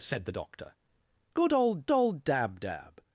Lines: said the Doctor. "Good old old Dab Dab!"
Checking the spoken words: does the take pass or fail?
pass